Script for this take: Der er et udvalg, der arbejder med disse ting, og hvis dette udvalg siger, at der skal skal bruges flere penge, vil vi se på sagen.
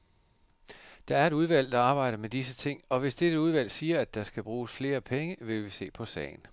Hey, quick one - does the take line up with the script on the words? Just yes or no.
no